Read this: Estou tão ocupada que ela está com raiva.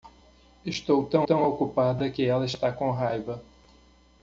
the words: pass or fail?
fail